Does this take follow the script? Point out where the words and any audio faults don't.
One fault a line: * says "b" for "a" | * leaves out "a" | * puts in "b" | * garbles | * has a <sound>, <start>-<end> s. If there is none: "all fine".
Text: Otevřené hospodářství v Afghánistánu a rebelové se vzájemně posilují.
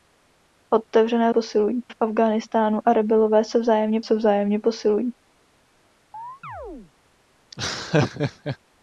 * says "posilují" for "hospodářství"
* puts in "se vzájemně"
* has a chirp, 6.1-6.9 s
* has a laugh, 7.5-8.6 s